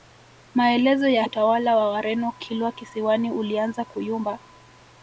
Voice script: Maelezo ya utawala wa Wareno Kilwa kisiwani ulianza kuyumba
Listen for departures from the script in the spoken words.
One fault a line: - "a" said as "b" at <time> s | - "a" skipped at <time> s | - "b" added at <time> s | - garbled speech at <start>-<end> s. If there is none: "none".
none